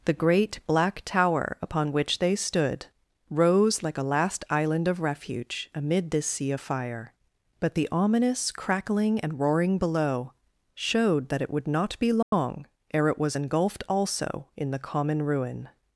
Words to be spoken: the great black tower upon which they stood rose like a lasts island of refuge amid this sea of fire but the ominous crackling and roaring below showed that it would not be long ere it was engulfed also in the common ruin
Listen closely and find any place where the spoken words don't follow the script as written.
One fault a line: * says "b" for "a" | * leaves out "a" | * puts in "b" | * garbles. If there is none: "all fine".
* says "last" for "lasts"